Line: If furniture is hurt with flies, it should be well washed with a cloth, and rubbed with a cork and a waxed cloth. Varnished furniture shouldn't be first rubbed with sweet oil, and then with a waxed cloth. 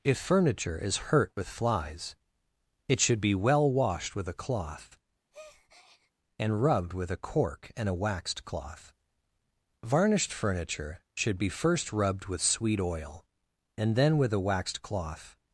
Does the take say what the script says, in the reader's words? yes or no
no